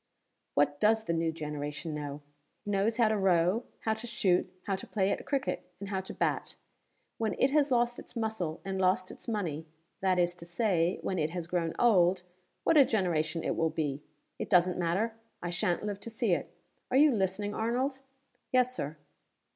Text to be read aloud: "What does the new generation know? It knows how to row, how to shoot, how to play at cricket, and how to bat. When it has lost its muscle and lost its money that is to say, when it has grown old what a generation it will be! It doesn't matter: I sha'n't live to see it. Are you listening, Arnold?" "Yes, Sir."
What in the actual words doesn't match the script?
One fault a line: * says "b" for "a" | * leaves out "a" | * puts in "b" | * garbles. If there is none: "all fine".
* leaves out "It"